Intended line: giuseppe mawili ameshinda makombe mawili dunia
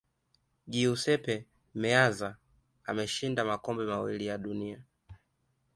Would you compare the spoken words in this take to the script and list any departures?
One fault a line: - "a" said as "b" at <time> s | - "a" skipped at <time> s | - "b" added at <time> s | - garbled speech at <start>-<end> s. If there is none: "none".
- "mawili" said as "meazza" at 1.7 s
- "ya" added at 4.3 s